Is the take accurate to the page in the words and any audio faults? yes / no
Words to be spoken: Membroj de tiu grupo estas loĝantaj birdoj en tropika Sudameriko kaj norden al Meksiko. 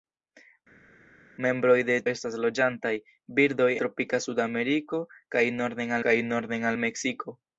no